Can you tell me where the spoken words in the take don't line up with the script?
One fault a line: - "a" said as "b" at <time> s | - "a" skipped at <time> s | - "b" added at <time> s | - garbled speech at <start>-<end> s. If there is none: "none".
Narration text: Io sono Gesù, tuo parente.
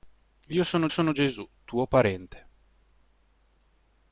- "sono" added at 0.9 s